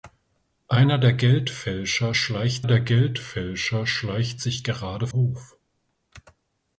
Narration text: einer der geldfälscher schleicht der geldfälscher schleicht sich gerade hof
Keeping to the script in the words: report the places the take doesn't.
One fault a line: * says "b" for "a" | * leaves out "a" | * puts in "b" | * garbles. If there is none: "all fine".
all fine